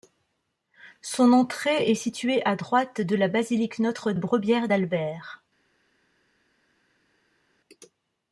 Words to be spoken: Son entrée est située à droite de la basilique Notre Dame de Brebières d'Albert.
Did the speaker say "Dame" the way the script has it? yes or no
no